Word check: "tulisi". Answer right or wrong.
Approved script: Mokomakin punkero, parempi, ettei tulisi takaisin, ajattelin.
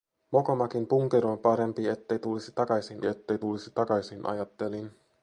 right